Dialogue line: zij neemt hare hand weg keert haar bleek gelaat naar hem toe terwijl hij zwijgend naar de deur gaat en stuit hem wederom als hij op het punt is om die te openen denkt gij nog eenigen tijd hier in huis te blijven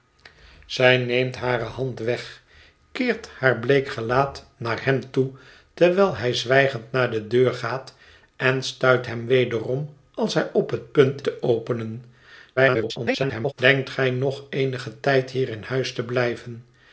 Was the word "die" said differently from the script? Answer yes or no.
yes